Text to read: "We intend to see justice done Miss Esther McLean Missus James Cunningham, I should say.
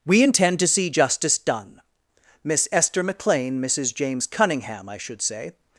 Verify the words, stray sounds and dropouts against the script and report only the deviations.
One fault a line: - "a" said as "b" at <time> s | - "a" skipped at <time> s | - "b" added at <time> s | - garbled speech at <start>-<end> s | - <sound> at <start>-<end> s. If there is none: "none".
none